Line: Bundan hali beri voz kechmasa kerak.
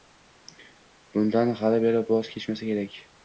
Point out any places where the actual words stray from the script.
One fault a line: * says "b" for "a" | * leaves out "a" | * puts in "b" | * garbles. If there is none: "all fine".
all fine